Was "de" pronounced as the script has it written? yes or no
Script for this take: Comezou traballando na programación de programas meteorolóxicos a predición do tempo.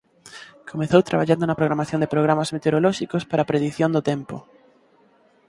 yes